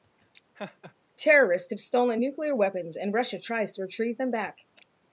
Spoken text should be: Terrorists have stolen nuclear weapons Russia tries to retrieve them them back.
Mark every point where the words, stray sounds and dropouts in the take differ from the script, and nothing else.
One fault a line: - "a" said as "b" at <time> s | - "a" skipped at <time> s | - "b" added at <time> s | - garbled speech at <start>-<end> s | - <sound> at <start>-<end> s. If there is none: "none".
- laugh at 0.5-0.9 s
- "and" added at 3.0 s
- "them" skipped at 4.3 s